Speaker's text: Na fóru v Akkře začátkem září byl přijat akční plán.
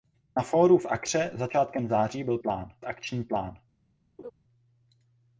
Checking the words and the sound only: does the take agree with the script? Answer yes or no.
no